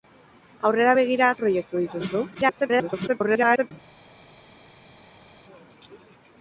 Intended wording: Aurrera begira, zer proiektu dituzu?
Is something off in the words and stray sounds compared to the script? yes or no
yes